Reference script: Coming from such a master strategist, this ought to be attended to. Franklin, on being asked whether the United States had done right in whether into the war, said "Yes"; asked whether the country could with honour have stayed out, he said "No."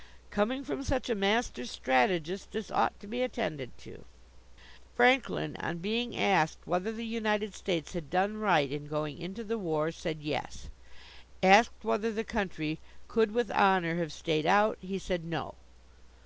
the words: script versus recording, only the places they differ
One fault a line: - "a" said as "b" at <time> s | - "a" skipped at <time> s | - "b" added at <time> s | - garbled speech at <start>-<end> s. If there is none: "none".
- "whether" said as "going" at 8.8 s